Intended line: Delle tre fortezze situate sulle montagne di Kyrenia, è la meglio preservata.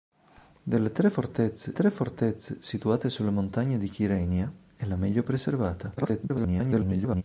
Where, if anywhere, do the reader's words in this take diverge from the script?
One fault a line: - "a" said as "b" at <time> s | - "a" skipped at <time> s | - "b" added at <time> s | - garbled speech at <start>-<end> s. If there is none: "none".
- "tre fortezze" added at 1.7 s
- garbled speech at 6.0-7.2 s